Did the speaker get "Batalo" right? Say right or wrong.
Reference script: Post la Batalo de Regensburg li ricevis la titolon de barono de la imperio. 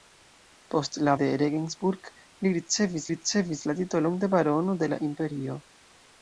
wrong